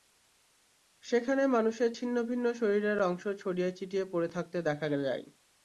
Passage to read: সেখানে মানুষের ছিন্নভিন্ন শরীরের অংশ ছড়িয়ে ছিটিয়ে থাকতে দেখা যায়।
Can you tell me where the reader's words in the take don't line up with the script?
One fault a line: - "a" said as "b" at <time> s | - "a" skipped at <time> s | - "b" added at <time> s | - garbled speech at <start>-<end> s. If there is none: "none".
- "পড়ে" added at 4.0 s